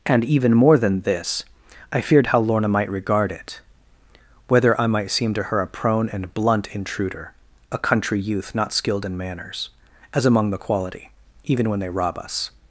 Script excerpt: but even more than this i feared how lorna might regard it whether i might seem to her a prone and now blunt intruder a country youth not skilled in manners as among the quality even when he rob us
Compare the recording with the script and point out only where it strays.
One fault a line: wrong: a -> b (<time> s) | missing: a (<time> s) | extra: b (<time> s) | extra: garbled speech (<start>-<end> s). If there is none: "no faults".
wrong: but -> and (0.1 s)
missing: now (6.3 s)
wrong: he -> they (11.8 s)